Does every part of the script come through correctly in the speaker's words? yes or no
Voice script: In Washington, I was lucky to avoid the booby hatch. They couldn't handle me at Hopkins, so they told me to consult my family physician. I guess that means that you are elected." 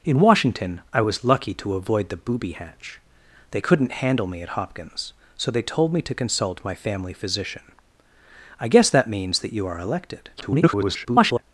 no